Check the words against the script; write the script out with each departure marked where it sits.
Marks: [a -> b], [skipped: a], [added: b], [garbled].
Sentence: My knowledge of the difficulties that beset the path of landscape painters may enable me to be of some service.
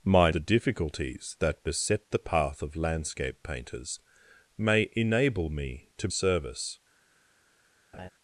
My [skipped: knowledge of] the difficulties that beset the path of landscape painters may enable me to [skipped: be of some] service.